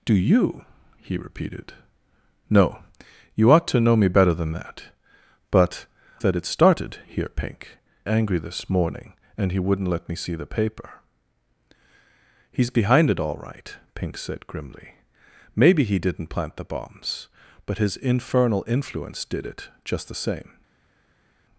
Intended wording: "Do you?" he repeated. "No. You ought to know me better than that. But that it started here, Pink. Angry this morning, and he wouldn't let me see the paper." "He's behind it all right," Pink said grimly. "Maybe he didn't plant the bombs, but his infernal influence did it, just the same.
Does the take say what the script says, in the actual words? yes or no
yes